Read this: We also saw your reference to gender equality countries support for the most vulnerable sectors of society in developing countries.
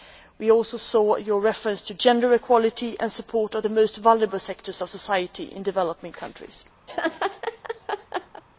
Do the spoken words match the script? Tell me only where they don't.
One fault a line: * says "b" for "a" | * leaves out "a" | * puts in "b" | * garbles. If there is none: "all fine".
* says "and" for "countries"